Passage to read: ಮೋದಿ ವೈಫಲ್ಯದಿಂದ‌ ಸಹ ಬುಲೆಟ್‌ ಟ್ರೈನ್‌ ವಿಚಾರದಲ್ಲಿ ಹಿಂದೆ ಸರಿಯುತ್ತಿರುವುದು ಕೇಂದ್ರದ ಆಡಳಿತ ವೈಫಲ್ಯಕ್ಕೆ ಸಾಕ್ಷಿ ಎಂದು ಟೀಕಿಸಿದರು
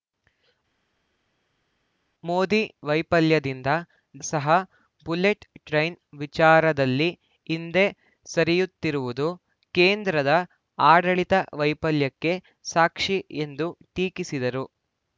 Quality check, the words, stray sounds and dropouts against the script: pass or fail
pass